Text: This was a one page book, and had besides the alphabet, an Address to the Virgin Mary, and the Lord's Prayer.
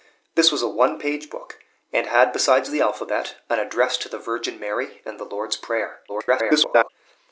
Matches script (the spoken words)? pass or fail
fail